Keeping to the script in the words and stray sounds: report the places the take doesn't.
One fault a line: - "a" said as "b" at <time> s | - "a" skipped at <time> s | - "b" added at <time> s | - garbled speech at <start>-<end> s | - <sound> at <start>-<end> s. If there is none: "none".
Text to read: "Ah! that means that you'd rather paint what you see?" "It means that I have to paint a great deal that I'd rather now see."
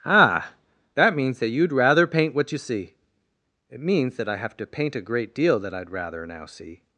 none